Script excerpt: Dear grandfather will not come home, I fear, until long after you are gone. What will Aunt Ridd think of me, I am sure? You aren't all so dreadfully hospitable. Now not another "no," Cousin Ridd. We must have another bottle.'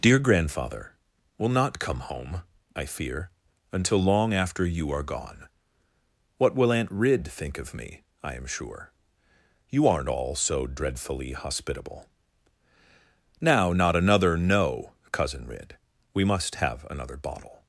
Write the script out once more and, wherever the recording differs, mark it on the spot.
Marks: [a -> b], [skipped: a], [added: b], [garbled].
Dear grandfather will not come home, I fear, until long after you are gone. What will Aunt Ridd think of me, I am sure? You aren't all so dreadfully hospitable. Now not another "no," Cousin Ridd. We must have another bottle.'